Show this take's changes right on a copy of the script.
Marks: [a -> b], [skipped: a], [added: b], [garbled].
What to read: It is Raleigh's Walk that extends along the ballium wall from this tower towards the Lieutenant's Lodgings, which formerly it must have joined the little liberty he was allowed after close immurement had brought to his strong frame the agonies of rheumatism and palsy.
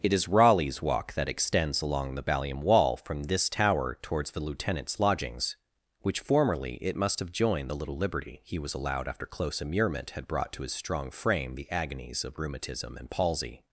It is Raleigh's Walk that extends along the ballium wall from this tower towards the Lieutenant's Lodgings, which formerly it must have joined the little liberty he was allowed after close immurement had brought to his strong frame the agonies of rheumatism and palsy.